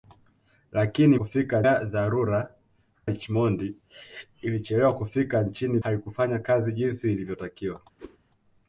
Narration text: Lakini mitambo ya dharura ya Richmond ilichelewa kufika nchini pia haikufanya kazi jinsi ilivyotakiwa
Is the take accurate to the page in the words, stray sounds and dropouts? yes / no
no